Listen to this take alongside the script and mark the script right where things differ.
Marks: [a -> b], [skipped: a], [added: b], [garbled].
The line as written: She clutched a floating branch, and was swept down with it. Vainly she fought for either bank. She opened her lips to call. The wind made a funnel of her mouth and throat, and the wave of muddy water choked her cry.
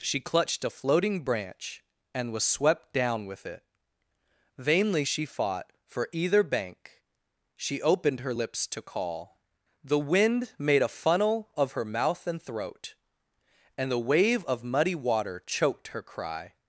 She clutched a floating branch, and was swept down with it. Vainly she fought for either bank. She opened her lips to call. The wind made a funnel of her mouth and throat, and the wave of muddy water choked her cry.